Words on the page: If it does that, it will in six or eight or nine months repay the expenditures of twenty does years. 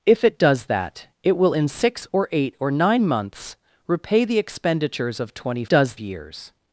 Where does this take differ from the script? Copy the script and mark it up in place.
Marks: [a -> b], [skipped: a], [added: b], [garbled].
If it does that, it will in six or eight or nine months repay the expenditures of twenty does years.